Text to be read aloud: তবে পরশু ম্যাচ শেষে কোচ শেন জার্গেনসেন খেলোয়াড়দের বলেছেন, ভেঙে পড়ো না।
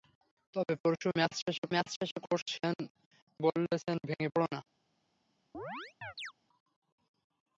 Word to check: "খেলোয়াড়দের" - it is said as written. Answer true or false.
false